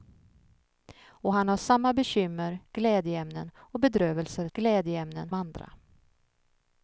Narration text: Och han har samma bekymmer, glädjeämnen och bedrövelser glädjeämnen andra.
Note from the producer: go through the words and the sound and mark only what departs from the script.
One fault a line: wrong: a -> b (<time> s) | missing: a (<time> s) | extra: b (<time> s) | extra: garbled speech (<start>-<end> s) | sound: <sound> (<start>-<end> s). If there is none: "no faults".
no faults